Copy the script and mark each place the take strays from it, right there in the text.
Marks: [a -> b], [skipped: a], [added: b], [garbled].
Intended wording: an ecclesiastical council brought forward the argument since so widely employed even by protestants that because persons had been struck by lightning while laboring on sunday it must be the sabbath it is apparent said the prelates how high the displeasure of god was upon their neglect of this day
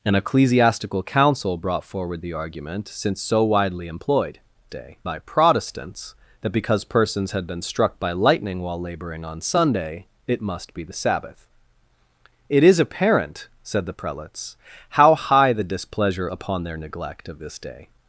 an ecclesiastical council brought forward the argument since so widely employed [even -> day] by protestants that because persons had been struck by lightning while laboring on sunday it must be the sabbath it is apparent said the prelates how high the displeasure [skipped: of god was] upon their neglect of this day